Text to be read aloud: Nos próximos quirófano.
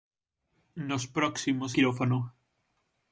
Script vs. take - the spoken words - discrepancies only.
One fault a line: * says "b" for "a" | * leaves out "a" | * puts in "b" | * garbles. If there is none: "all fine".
all fine